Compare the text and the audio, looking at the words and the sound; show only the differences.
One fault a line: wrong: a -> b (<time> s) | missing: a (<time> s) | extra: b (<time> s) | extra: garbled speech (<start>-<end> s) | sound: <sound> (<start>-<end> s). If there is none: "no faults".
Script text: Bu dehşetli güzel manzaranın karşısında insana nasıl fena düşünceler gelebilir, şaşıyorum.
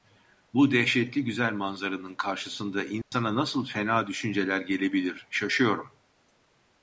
sound: dropout (3.0-3.1 s)